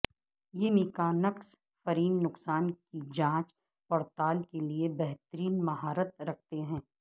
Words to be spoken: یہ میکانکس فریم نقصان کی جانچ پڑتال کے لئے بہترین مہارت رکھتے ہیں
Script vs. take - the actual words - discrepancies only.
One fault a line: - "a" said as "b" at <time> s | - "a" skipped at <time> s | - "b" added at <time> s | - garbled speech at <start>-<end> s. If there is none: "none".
none